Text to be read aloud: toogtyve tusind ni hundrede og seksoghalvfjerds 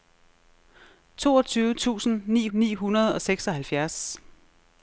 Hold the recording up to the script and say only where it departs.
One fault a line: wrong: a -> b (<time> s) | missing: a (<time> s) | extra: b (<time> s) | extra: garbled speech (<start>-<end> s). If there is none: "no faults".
extra: ni (2.5 s)